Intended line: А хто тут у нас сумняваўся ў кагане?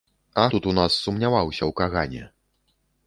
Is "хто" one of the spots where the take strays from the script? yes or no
yes